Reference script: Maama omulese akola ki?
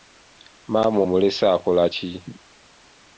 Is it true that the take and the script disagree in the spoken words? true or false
false